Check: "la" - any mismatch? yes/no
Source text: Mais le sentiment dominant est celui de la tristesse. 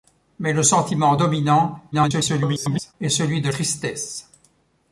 yes